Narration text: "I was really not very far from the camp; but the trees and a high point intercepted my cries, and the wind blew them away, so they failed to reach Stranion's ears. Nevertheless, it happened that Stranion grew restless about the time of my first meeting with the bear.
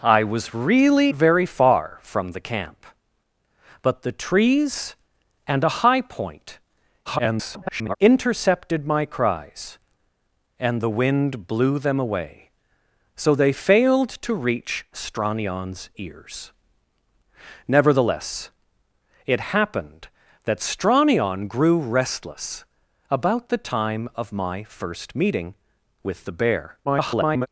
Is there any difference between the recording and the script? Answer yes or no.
yes